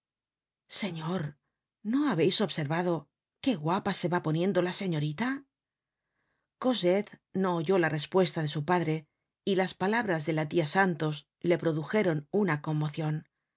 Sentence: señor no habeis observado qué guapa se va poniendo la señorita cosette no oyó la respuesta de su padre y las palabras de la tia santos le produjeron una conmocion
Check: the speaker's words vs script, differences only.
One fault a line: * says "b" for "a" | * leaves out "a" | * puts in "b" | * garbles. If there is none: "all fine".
all fine